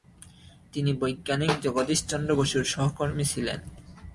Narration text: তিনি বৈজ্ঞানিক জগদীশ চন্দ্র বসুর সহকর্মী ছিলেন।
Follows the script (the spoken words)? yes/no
yes